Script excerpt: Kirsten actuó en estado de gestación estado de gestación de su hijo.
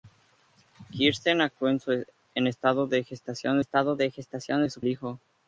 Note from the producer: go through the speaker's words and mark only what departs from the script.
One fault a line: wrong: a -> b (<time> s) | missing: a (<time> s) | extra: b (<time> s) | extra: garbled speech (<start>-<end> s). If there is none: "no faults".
no faults